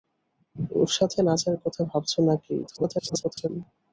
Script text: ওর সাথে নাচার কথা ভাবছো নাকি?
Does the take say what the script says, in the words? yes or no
no